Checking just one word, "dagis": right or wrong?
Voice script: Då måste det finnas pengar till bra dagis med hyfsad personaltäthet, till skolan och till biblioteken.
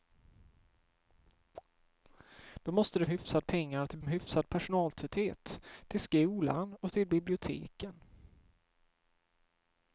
wrong